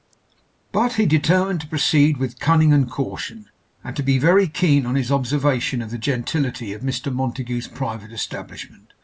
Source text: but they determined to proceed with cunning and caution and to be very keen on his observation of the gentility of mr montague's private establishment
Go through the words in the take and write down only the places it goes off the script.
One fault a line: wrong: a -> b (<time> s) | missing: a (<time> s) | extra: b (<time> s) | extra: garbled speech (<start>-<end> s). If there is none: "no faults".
wrong: they -> he (0.9 s)